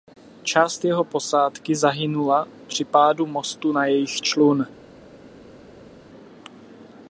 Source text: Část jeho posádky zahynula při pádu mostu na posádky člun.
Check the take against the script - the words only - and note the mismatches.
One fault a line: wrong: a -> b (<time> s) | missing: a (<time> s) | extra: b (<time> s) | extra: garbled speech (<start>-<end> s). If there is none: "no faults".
wrong: posádky -> jejich (3.9 s)